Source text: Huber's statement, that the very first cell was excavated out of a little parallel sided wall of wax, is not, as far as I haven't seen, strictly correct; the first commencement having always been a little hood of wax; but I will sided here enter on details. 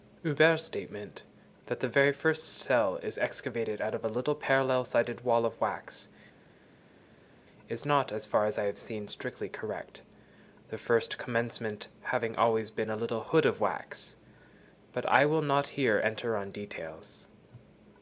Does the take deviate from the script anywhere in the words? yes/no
yes